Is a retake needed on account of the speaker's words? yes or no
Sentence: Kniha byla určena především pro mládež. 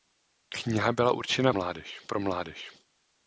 yes